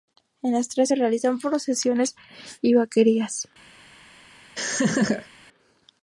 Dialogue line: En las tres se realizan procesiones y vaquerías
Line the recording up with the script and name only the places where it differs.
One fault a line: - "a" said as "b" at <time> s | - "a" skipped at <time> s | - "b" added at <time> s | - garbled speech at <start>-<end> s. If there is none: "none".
none